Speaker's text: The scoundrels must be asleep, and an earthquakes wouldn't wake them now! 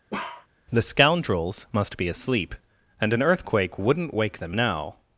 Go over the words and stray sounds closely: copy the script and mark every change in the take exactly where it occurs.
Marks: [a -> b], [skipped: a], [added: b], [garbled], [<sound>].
[bark] The scoundrels must be asleep, and an [earthquakes -> earthquake] wouldn't wake them now!